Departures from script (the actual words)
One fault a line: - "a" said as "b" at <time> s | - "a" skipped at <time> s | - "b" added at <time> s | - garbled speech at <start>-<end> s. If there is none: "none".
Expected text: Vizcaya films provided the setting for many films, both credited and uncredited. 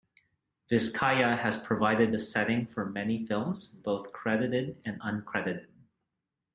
- "films" said as "has" at 1.4 s